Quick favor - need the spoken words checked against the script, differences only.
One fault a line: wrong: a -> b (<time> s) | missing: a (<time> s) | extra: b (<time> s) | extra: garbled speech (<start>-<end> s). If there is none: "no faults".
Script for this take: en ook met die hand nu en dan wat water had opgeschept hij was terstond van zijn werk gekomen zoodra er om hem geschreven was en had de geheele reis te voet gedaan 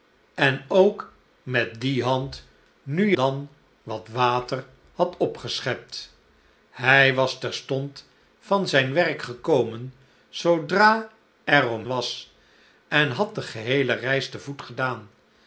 missing: en (3.1 s)
missing: hem geschreven (11.9 s)